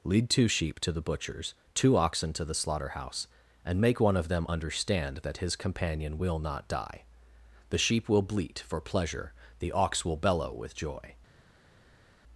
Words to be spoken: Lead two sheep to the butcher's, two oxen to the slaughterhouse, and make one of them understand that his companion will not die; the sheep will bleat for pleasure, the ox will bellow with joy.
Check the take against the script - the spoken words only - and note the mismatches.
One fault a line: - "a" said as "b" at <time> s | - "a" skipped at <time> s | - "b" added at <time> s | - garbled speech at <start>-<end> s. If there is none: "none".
none